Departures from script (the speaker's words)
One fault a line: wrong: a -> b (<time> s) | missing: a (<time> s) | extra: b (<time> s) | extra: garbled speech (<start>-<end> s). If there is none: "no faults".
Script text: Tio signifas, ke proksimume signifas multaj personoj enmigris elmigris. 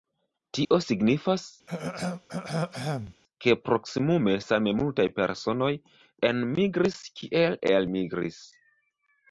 wrong: signifas -> same (4.4 s)
extra: kiel (7.2 s)